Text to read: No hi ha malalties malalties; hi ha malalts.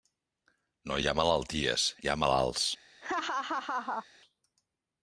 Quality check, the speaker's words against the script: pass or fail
fail